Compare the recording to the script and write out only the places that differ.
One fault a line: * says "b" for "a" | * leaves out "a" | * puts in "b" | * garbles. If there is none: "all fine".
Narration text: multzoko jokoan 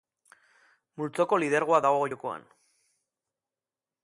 * puts in "lidergoa dago"